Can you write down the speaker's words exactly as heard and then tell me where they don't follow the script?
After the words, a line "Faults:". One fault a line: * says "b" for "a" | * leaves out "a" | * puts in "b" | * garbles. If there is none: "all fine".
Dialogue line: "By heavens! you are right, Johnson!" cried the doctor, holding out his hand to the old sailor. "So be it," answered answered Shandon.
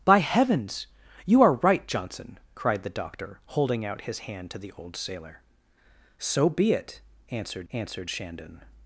"By heavens! you are right, Johnson!" cried the doctor, holding out his hand to the old sailor. "So be it," answered answered Shandon.
Faults:
all fine